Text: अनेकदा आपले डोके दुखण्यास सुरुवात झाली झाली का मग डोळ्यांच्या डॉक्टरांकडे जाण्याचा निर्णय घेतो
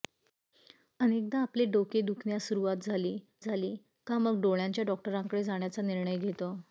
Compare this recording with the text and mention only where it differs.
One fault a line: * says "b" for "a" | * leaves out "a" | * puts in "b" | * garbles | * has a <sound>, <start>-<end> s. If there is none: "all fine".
all fine